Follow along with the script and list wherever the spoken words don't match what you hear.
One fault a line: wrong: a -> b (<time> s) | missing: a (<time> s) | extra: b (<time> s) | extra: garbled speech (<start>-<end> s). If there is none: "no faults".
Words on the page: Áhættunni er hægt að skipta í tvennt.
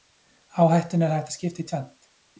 no faults